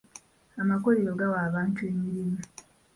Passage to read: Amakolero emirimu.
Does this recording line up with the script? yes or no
no